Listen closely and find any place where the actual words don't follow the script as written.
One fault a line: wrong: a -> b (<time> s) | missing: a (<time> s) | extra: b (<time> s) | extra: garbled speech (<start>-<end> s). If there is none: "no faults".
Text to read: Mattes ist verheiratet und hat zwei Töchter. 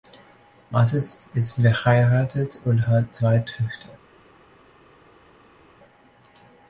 no faults